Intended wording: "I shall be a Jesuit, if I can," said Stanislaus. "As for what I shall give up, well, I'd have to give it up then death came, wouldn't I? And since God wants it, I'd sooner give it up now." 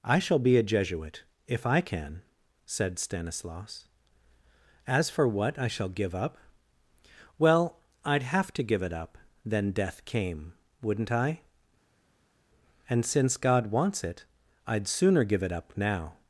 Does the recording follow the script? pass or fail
pass